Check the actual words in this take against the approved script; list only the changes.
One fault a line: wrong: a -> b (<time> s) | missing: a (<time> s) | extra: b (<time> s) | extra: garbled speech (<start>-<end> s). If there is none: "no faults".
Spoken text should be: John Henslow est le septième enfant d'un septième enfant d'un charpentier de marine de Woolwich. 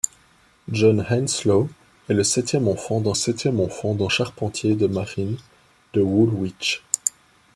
no faults